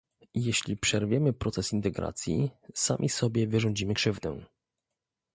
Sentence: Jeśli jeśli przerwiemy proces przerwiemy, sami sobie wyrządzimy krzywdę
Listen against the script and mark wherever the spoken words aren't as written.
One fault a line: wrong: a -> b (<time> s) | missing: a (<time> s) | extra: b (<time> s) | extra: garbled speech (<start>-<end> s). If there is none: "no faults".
missing: jeśli (0.8 s)
wrong: przerwiemy -> integracji (1.7 s)